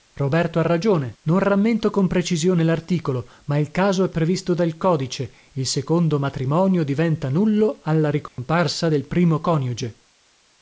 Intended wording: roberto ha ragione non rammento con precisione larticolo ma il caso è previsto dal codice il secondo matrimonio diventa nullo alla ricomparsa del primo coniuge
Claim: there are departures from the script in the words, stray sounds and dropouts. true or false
true